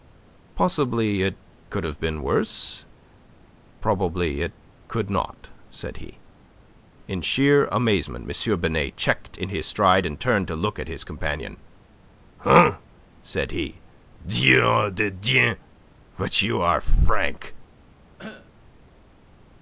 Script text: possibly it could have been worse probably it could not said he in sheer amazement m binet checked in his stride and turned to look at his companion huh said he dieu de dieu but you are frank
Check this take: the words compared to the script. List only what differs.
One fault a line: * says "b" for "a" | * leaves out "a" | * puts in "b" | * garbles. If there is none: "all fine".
all fine